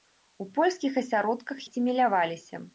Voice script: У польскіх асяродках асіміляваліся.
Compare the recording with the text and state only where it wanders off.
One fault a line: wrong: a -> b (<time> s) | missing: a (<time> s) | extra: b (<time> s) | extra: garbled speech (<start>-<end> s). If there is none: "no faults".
no faults